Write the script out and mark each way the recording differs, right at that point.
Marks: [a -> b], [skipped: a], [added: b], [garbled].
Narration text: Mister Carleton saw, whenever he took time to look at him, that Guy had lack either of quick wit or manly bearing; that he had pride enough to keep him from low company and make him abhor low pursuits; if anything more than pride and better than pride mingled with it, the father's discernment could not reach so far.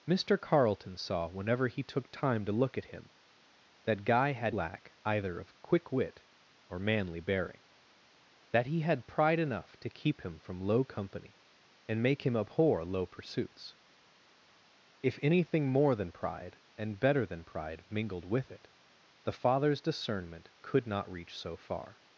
Mister Carleton saw, whenever he took time to look at him, that Guy had lack either of quick wit or manly bearing; that he had pride enough to keep him from low company and make him abhor low pursuits; if anything more than pride and better than pride mingled with it, the father's discernment could not reach so far.